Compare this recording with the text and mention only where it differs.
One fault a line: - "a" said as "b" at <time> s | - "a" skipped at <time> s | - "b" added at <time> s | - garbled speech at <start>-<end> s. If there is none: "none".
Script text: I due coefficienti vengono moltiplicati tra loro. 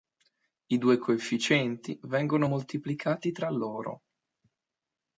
none